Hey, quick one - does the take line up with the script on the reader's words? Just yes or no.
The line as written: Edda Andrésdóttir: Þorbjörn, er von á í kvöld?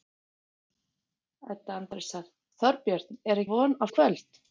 yes